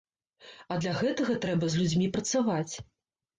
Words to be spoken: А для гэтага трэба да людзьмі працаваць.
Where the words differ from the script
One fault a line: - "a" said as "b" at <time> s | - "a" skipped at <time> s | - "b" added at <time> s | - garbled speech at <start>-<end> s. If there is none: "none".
- "да" said as "з" at 1.7 s